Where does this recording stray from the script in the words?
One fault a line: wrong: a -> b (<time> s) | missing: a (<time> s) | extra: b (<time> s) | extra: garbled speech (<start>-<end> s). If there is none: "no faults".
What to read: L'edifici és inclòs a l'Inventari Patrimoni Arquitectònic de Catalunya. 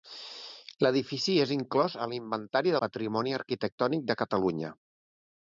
no faults